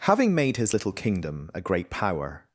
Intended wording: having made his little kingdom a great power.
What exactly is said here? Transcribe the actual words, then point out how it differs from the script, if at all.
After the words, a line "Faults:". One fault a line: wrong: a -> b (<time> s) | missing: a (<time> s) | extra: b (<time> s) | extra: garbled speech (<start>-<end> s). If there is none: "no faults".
having made his little kingdom a great power.
Faults:
no faults